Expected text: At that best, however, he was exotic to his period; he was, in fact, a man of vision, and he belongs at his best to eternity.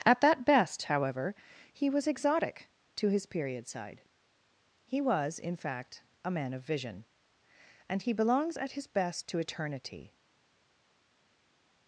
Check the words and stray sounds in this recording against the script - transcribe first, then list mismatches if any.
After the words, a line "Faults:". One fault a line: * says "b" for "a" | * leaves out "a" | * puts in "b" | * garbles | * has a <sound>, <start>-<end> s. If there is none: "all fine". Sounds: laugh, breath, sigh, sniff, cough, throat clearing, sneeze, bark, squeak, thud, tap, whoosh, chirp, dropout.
At that best, however, he was exotic to his period; side he was, in fact, a man of vision, and he belongs at his best to eternity.
Faults:
* puts in "side"